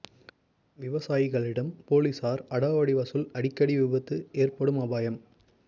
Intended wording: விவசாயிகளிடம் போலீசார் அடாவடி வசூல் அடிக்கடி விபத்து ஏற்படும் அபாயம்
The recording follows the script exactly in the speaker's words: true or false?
true